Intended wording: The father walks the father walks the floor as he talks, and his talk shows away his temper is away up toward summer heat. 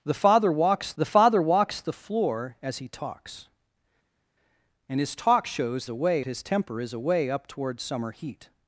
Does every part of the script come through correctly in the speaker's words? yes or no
yes